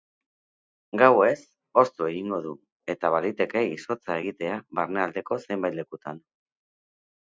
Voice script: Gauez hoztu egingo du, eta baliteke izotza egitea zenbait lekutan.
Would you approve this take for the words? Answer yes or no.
no